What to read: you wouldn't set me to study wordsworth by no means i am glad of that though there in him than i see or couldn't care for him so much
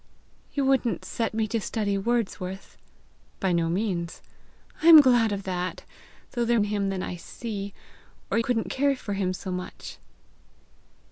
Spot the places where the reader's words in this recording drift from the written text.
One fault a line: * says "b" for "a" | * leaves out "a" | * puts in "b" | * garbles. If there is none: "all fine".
all fine